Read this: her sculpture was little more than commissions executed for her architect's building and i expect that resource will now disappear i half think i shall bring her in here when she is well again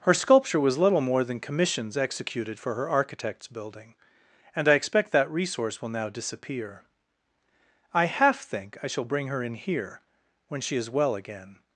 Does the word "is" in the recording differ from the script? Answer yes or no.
no